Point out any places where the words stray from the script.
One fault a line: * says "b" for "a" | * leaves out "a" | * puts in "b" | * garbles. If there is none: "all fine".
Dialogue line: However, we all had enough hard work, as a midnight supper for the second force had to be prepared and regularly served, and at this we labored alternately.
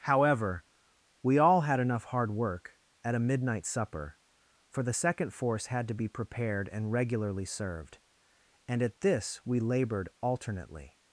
* says "at" for "as"